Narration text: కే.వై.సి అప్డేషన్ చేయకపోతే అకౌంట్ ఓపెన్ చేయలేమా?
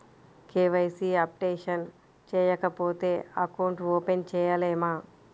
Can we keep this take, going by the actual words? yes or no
yes